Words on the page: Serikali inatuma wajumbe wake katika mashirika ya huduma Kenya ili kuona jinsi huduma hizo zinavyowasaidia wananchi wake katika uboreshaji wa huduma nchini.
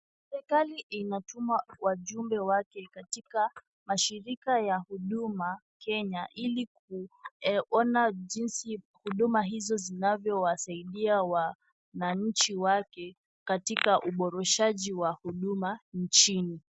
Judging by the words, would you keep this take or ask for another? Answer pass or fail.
pass